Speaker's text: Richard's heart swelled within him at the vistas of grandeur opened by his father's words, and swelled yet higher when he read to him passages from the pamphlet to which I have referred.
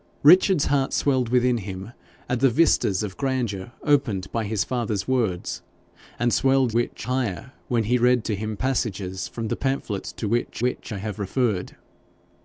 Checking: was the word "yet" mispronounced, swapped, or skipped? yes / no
yes